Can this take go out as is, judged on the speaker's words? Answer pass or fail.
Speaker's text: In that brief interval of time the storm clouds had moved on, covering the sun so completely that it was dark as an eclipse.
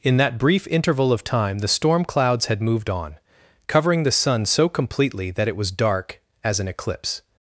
pass